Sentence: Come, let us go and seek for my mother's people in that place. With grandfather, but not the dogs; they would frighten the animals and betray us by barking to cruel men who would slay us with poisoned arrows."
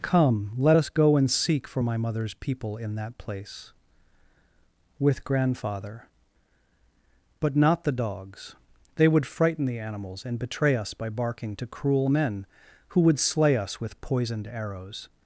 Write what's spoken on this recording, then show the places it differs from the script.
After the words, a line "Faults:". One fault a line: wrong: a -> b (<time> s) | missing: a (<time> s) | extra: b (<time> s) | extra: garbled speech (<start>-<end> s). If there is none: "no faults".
Come, let us go and seek for my mother's people in that place. With grandfather, but not the dogs; they would frighten the animals and betray us by barking to cruel men who would slay us with poisoned arrows."
Faults:
no faults